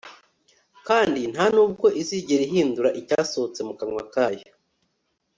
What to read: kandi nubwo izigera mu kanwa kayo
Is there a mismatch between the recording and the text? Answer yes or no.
yes